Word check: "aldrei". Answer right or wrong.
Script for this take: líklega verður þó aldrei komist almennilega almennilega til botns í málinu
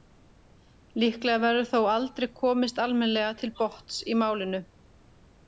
right